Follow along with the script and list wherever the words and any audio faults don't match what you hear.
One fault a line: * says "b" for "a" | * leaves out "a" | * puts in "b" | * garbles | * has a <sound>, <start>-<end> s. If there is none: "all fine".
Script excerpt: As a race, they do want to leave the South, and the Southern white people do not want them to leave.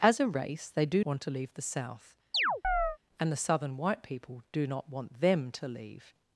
* has a chirp, 2.3-3.0 s